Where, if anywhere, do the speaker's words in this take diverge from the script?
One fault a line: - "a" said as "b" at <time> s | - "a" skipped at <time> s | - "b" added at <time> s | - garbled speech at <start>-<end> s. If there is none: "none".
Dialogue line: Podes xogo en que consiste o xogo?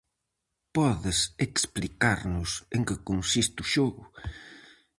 - "xogo" said as "explicarnos" at 1.5 s